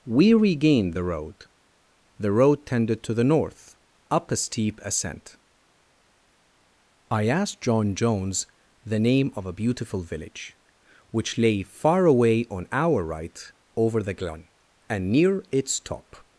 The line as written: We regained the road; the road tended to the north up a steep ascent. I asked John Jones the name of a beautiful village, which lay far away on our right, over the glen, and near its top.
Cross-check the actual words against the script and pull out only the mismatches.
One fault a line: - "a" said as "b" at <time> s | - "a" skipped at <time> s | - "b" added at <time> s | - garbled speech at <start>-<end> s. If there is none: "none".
none